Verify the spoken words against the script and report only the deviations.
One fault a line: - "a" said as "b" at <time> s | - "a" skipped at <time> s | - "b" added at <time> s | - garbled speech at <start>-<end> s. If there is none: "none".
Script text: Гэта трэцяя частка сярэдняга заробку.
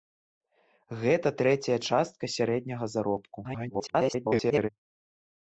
- garbled speech at 3.4-4.7 s